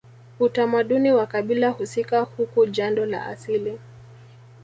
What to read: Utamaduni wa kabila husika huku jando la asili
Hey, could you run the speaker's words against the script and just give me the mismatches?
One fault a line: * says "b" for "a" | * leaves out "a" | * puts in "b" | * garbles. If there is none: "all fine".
all fine